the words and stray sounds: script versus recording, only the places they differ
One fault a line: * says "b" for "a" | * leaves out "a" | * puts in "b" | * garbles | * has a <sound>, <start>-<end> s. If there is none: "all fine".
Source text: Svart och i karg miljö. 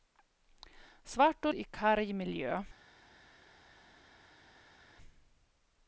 all fine